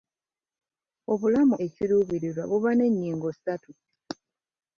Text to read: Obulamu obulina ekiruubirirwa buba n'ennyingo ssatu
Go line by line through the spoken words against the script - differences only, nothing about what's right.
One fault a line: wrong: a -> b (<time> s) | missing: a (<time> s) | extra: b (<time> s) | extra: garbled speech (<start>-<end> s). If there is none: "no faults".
missing: obulina (1.6 s)